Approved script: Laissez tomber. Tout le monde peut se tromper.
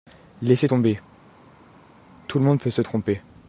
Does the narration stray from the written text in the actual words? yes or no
no